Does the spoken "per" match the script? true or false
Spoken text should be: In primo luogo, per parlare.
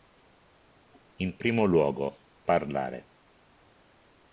false